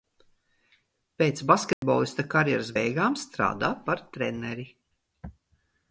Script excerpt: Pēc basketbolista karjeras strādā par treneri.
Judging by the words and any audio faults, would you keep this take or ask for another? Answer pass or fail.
fail